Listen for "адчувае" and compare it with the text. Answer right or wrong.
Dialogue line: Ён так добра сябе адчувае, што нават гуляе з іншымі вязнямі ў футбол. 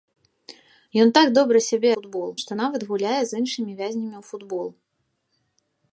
wrong